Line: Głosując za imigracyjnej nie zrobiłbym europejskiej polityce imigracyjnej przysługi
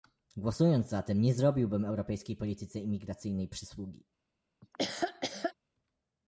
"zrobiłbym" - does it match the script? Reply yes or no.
yes